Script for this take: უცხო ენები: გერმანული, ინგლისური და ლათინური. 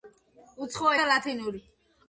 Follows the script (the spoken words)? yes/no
no